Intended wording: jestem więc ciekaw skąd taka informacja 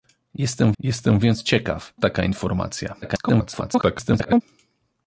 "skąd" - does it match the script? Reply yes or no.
no